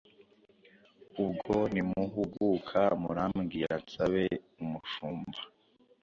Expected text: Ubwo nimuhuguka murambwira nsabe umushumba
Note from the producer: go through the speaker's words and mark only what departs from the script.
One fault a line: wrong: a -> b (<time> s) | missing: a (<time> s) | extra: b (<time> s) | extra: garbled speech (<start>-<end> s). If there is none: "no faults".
no faults